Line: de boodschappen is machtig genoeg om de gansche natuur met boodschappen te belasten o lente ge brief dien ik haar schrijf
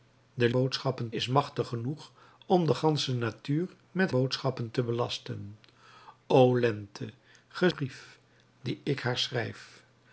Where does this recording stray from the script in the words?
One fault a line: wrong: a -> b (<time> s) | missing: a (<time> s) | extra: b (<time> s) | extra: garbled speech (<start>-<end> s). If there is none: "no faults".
no faults